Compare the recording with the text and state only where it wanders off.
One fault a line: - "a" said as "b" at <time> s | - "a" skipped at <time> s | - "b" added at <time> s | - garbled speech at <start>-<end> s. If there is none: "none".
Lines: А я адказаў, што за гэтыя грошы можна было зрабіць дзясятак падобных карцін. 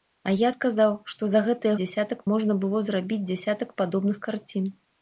- "грошы" said as "дзясятак" at 1.8 s